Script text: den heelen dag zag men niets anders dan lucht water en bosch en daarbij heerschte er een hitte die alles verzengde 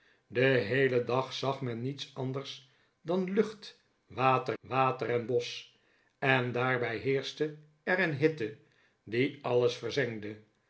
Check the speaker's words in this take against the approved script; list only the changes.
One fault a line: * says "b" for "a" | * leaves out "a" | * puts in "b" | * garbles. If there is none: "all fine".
* puts in "water"